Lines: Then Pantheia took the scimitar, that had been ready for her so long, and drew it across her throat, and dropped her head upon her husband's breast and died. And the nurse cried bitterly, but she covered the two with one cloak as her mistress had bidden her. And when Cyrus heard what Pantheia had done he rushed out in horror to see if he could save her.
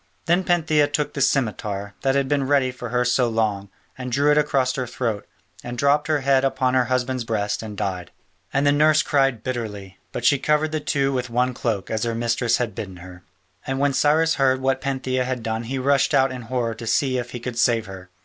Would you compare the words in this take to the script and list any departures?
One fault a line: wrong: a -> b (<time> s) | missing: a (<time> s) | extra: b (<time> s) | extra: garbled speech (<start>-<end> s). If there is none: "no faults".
no faults